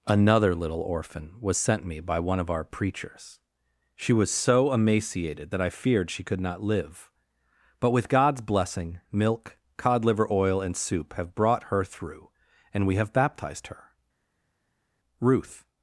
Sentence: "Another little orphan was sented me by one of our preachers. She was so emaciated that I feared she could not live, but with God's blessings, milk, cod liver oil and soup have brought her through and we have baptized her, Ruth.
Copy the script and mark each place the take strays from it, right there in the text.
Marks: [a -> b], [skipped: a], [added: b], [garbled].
"Another little orphan was [sented -> sent] me by one of our preachers. She was so emaciated that I feared she could not live, but with God's [blessings, -> blessing] milk, cod liver oil and soup have brought her through and we have baptized her, Ruth.